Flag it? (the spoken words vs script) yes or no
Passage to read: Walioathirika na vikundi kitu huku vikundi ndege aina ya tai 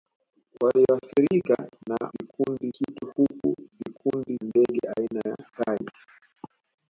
no